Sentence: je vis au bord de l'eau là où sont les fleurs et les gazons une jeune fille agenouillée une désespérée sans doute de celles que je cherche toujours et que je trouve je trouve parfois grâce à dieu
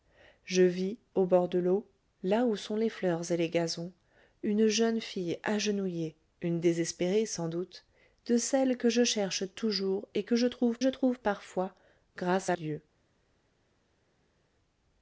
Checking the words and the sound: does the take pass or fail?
pass